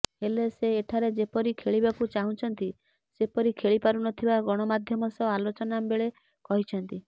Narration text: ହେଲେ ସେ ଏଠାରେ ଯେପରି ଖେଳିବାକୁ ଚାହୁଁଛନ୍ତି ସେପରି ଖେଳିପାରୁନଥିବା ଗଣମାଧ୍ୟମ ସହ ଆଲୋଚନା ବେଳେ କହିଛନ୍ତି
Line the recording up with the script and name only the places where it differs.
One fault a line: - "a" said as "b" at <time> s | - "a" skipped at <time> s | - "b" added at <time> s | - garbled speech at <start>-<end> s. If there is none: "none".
none